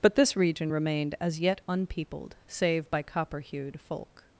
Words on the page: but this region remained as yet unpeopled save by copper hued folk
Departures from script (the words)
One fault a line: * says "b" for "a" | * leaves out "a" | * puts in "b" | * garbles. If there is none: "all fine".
all fine